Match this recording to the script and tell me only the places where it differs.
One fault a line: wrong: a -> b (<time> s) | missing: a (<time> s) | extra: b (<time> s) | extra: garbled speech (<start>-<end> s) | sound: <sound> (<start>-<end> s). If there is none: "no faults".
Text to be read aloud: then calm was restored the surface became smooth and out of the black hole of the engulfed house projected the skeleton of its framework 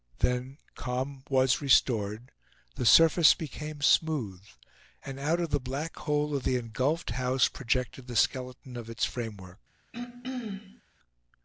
sound: throat clearing (9.9-10.8 s)